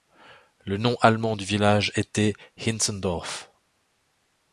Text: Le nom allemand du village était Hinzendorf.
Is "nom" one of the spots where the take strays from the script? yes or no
no